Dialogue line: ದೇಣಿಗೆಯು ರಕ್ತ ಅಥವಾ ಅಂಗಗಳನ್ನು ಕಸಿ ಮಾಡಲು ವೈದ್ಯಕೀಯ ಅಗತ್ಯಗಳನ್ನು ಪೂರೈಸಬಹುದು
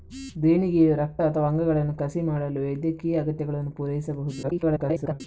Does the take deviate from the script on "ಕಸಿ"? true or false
false